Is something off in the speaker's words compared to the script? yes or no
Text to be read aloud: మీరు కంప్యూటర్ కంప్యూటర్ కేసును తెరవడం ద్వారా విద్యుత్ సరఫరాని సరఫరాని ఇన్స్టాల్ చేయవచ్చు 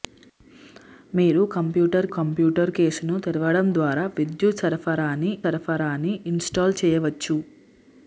no